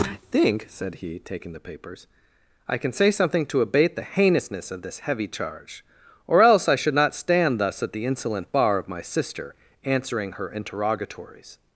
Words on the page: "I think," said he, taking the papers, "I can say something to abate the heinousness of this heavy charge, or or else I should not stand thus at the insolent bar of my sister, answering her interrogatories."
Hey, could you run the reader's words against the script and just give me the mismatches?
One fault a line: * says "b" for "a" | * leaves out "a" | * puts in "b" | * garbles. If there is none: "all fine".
* leaves out "or"